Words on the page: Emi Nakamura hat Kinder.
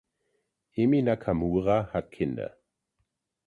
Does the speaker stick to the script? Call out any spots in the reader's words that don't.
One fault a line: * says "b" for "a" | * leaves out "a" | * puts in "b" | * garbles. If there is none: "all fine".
all fine